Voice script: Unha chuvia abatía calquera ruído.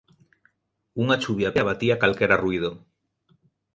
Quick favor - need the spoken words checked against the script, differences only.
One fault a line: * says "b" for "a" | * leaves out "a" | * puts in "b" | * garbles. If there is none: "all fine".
all fine